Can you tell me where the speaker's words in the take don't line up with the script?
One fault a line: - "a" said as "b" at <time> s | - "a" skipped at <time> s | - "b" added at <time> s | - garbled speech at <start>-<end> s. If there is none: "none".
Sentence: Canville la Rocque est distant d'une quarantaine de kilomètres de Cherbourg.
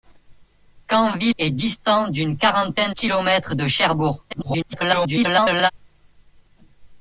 - "la Rocque" skipped at 1.4 s
- "de" skipped at 3.0 s
- garbled speech at 4.3-5.7 s